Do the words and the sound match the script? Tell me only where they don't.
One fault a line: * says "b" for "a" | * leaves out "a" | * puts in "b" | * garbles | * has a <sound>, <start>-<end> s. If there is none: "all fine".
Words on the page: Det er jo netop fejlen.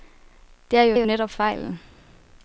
* puts in "jo"